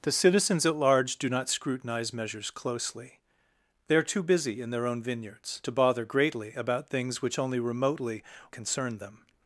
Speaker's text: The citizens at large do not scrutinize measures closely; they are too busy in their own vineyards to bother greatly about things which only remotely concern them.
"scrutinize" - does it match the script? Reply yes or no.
yes